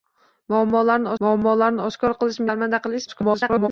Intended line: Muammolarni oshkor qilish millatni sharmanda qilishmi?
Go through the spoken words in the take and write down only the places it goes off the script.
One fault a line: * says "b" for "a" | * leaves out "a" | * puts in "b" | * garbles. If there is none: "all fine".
* puts in "muammolarni"
* leaves out "millatni"
* garbles